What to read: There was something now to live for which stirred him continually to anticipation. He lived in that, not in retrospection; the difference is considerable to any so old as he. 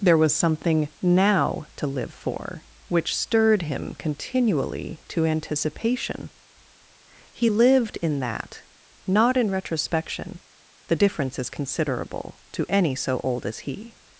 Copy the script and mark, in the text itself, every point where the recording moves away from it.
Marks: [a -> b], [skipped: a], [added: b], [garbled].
There was something now to live for which stirred him continually to anticipation. He lived in that, not in retrospection; the difference is considerable to any so old as he.